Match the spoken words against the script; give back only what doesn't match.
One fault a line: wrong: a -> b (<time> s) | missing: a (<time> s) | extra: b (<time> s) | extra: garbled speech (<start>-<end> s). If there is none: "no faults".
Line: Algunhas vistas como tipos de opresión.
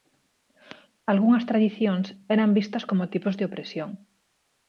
extra: tradicións eran (1.5 s)